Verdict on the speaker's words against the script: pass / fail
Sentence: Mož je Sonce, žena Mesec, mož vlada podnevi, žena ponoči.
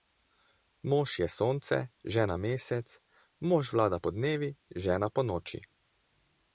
pass